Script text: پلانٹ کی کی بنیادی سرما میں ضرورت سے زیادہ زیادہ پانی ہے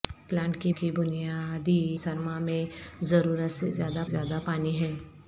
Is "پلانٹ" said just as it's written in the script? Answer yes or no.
yes